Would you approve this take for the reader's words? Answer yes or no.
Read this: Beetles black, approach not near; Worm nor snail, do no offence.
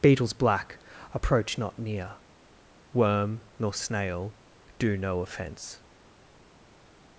yes